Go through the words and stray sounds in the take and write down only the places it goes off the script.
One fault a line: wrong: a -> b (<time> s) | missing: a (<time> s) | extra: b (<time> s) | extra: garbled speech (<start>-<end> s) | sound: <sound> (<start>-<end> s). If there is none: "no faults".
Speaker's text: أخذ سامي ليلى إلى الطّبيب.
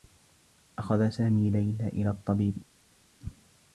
no faults